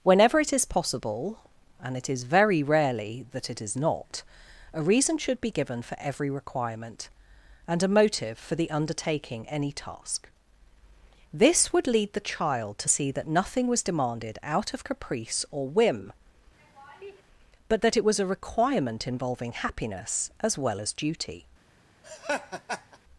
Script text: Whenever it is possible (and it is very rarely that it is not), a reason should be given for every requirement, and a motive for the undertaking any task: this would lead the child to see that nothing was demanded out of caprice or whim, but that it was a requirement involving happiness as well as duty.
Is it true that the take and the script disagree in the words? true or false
false